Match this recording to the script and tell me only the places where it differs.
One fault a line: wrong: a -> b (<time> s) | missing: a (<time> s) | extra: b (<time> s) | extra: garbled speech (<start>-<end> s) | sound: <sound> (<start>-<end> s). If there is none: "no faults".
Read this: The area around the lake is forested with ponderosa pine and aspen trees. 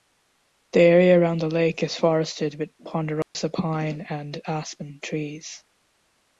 sound: dropout (3.2-3.3 s)